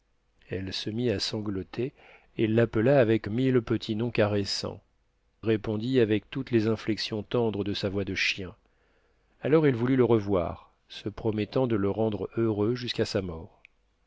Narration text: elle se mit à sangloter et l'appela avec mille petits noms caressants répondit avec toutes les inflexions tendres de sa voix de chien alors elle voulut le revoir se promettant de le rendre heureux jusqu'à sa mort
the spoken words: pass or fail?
pass